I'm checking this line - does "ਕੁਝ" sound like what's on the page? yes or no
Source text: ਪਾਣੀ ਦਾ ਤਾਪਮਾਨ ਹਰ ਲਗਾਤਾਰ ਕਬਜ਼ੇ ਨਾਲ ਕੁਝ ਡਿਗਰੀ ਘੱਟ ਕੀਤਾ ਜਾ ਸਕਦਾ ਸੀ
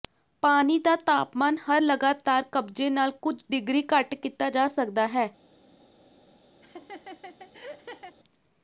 yes